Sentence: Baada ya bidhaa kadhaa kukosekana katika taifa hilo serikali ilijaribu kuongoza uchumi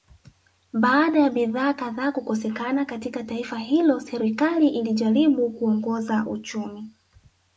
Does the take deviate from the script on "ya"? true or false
false